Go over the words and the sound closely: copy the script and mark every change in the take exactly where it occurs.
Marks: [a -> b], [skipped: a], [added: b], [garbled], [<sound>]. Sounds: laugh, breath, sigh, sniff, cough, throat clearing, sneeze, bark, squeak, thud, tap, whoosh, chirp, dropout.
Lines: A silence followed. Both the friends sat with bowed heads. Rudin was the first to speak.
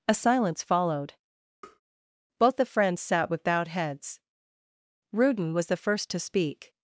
A silence followed. [tap] Both the friends sat with bowed heads. Rudin was the first to speak.